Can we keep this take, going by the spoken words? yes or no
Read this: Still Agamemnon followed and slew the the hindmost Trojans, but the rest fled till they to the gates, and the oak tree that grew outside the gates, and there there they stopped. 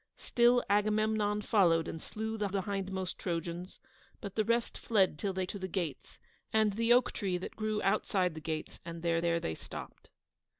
yes